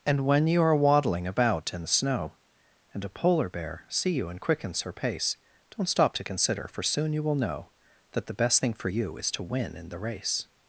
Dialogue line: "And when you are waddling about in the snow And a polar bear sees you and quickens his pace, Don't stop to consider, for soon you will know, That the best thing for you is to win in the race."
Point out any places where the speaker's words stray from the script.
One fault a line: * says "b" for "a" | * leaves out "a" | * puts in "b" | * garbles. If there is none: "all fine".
* says "see" for "sees"
* says "her" for "his"